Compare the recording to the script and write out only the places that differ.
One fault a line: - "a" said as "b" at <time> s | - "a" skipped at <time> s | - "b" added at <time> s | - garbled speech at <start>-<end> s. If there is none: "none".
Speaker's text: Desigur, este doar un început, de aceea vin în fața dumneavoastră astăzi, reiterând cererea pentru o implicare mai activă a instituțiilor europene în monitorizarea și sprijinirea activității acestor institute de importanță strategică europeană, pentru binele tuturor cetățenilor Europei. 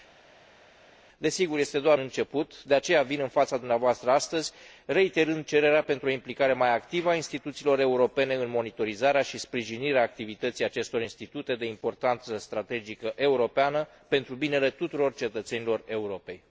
- "un" skipped at 2.0 s